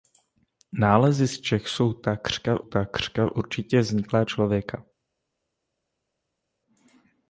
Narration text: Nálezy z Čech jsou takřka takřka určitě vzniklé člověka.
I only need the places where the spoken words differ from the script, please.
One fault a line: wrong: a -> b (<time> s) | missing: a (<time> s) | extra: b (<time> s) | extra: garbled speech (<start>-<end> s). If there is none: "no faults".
no faults